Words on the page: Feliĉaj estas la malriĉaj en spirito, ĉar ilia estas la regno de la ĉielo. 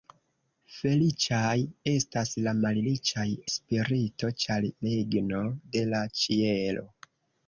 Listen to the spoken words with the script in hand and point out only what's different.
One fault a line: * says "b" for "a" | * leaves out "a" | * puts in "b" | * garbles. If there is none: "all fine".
* leaves out "en"
* leaves out "ilia estas la"